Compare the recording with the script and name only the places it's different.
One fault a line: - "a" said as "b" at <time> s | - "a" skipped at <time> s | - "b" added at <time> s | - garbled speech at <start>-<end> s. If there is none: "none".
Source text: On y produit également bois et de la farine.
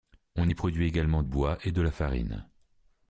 none